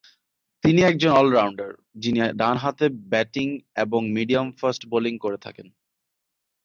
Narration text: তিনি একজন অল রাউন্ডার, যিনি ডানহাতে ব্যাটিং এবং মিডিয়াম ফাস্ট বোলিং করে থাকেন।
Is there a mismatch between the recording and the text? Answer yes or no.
no